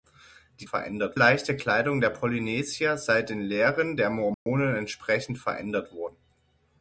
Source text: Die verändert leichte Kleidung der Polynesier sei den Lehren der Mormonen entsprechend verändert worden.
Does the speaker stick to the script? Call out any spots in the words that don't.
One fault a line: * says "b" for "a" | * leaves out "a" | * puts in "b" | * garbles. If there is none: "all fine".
all fine